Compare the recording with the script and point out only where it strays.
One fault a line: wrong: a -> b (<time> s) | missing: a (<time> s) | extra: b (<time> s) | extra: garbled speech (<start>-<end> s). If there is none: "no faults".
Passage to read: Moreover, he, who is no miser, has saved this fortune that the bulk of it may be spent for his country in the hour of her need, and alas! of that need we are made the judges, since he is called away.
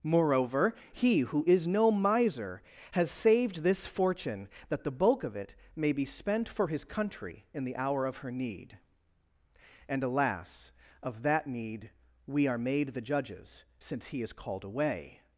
no faults